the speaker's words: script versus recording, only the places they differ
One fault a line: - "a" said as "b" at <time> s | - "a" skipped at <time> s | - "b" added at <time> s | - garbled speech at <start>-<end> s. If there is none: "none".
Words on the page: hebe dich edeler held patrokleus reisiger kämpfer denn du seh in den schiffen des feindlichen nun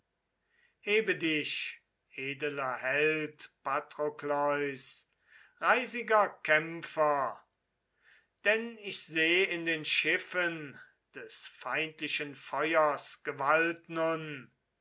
- "du" said as "ich" at 8.8 s
- "feuers gewalt" added at 12.3 s